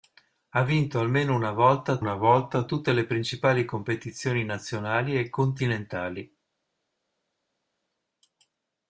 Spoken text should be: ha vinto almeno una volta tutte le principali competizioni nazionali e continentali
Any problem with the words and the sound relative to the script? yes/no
yes